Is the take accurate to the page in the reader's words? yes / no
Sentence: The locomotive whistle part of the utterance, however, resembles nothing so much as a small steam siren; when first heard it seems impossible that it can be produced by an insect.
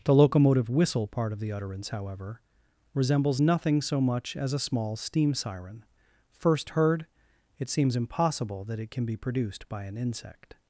no